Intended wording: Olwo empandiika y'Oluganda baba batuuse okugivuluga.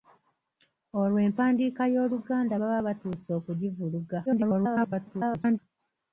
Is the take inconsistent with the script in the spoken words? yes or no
yes